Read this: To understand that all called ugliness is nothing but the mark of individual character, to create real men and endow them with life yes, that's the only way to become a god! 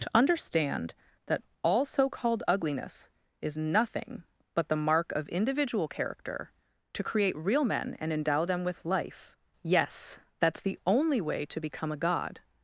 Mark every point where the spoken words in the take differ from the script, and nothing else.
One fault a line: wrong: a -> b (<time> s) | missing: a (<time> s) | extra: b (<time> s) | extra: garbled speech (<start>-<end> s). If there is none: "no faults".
extra: so (1.9 s)